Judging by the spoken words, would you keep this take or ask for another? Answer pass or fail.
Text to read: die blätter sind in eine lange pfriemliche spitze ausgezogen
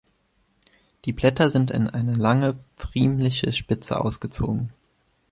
pass